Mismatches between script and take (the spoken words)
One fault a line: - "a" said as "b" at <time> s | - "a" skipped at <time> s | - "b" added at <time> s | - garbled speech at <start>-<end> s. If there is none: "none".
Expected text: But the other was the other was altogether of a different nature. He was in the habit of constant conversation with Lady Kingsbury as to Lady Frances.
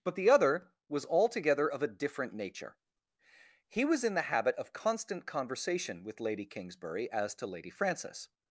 - "the other was" skipped at 1.1 s